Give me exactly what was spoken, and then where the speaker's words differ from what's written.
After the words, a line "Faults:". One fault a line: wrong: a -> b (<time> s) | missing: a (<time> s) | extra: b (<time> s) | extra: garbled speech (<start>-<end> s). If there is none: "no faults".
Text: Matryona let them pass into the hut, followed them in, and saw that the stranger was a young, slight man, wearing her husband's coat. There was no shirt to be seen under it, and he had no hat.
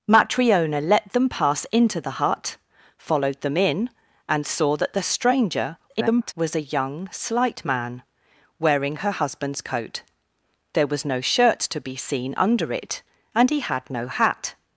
Matryona let them pass into the hut, followed them in, and saw that the stranger [garbled] was a young, slight man, wearing her husband's coat. There was no shirt to be seen under it, and he had no hat.
Faults:
extra: garbled speech (5.9-6.3 s)